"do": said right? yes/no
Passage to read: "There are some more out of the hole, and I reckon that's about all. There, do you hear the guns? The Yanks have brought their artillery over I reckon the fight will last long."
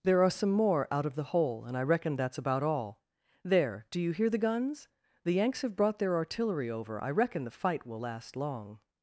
yes